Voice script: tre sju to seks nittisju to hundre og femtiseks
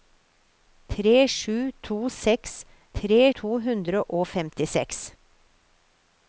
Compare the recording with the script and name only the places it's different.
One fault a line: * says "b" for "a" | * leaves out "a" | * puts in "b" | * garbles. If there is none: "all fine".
* says "tre" for "nittisju"